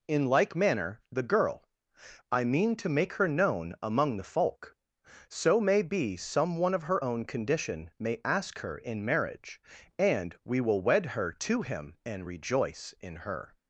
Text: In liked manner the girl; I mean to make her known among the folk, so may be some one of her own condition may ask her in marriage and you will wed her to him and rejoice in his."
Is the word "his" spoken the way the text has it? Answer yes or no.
no